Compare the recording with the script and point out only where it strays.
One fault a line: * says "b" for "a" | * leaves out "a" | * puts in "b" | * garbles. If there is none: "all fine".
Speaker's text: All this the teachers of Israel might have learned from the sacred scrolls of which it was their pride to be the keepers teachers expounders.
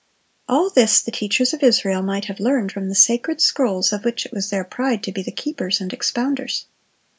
* says "and" for "teachers"